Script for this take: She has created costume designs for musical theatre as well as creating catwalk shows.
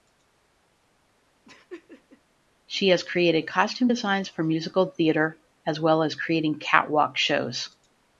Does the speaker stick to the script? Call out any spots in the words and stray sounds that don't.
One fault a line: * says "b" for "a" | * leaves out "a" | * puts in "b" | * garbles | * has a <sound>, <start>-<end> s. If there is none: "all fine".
* has a laugh, 1.5-2.2 s